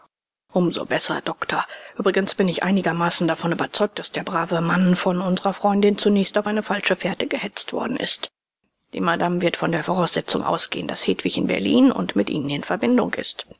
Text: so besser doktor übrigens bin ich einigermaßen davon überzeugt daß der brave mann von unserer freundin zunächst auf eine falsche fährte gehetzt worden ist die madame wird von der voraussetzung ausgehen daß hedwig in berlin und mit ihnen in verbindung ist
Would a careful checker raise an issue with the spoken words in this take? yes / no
no